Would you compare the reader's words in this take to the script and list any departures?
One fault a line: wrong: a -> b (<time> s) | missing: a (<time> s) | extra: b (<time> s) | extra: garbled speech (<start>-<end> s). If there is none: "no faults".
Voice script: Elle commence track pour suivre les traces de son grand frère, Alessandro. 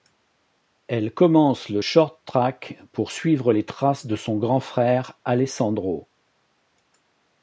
extra: le short (1.7 s)